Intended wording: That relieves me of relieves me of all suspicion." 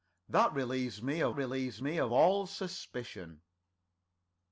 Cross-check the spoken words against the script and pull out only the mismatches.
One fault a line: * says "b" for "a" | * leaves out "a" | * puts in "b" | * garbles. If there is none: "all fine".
all fine